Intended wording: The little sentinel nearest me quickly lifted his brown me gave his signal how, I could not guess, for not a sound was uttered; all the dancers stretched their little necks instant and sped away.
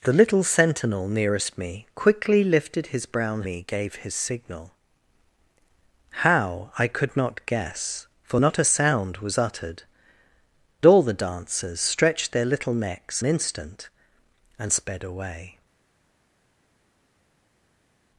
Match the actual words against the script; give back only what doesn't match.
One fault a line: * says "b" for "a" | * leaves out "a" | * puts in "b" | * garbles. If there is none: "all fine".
all fine